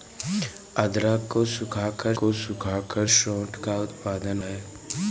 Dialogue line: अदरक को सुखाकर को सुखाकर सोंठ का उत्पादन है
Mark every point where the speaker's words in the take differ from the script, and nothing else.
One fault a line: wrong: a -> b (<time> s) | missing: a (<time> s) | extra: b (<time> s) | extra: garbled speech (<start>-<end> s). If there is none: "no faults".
no faults